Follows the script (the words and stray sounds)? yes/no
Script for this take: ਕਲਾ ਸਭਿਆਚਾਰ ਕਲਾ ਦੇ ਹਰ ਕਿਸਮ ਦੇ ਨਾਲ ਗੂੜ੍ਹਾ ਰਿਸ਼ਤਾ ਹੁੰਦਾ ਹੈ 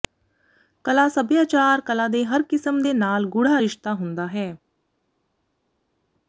yes